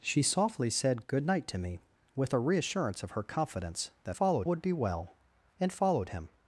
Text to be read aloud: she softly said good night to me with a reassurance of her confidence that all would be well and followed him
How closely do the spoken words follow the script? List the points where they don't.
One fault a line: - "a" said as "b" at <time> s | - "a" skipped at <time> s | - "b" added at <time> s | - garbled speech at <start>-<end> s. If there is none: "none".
- "all" said as "followed" at 4.1 s